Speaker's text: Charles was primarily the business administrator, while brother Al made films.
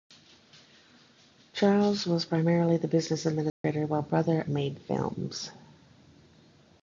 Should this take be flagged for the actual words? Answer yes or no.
yes